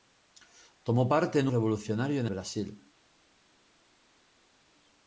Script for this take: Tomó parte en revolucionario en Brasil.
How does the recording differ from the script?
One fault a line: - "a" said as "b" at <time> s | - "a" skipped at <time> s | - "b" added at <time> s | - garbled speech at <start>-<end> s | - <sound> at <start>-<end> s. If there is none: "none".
none